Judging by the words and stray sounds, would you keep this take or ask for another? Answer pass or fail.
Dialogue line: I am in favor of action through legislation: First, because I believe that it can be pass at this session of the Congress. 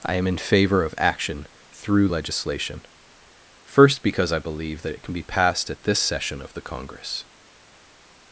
fail